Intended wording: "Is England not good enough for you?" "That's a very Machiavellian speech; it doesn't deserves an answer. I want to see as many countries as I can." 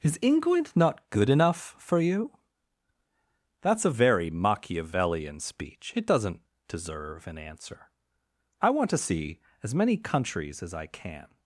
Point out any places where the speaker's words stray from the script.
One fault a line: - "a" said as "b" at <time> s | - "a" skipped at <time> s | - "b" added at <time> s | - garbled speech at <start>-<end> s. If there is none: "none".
- "deserves" said as "deserve" at 6.7 s